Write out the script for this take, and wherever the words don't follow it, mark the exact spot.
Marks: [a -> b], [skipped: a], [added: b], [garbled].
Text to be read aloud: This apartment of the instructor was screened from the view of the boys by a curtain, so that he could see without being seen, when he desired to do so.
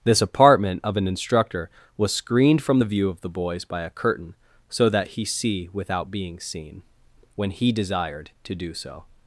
This apartment of [the -> an] instructor was screened from the view of the boys by a curtain, so that he [skipped: could] see without being seen, when he desired to do so.